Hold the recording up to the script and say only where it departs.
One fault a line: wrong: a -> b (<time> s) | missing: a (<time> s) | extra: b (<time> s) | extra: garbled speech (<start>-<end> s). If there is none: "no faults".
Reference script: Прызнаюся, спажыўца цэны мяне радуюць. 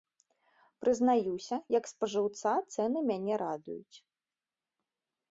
extra: як (1.8 s)